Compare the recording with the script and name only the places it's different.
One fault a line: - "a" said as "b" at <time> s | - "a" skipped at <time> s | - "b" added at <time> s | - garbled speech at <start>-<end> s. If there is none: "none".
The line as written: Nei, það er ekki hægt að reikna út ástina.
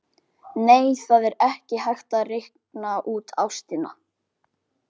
none